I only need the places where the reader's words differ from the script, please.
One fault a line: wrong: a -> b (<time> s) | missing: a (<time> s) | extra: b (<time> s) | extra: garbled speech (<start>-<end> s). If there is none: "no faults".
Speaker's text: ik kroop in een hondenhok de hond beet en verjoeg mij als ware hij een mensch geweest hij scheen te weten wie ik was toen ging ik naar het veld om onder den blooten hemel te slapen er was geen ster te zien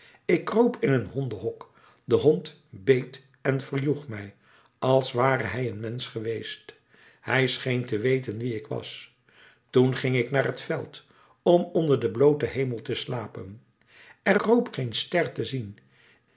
wrong: was -> kroop (14.4 s)